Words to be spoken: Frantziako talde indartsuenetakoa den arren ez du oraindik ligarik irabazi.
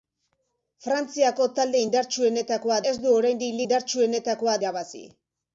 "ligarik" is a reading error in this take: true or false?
true